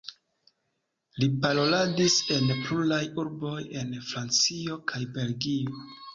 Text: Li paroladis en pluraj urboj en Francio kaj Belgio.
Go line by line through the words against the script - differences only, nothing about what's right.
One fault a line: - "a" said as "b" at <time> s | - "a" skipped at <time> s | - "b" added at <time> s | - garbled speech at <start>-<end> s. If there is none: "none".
none